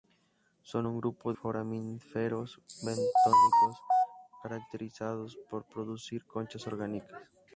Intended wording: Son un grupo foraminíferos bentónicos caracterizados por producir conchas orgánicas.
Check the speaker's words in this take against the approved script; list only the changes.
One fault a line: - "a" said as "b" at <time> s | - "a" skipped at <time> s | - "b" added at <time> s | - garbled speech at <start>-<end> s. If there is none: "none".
none